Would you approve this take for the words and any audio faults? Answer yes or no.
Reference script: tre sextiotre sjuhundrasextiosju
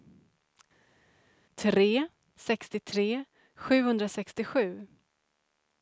yes